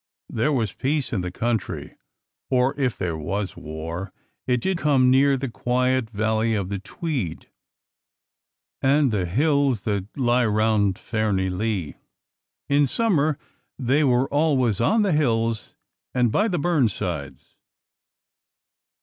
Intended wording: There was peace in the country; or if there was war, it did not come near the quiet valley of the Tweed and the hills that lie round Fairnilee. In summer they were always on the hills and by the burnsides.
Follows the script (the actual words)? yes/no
no